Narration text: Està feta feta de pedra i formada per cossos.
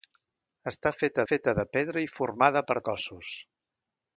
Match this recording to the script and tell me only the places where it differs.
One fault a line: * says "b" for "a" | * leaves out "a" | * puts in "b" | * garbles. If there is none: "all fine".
all fine